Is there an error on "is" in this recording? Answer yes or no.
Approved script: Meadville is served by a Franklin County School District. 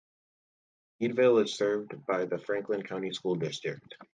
no